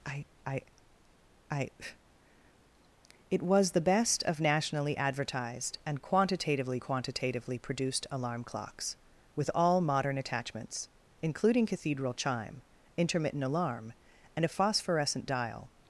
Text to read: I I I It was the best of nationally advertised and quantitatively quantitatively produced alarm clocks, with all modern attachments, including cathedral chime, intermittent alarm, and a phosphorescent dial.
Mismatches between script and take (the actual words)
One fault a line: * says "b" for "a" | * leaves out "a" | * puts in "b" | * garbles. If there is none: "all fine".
all fine